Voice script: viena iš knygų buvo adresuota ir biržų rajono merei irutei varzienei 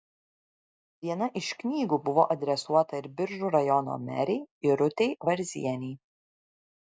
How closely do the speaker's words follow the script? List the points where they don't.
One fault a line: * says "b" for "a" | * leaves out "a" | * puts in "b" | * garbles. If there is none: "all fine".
all fine